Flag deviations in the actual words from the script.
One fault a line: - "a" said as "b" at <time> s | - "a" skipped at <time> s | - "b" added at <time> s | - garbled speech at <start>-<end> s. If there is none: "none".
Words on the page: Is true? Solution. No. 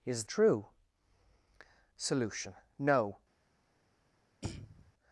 none